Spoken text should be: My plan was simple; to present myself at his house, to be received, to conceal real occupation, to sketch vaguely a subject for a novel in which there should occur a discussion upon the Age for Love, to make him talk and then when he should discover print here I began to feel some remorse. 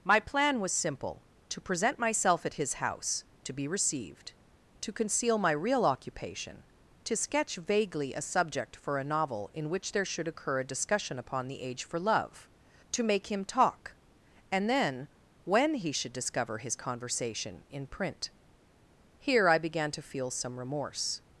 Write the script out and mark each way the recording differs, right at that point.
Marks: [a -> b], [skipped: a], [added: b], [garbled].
My plan was simple; to present myself at his house, to be received, to conceal [added: my] real occupation, to sketch vaguely a subject for a novel in which there should occur a discussion upon the Age for Love, to make him talk and then when he should discover [added: his conversation in] print here I began to feel some remorse.